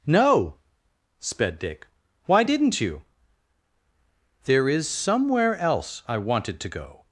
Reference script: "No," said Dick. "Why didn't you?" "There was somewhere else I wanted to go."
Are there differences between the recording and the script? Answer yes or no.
yes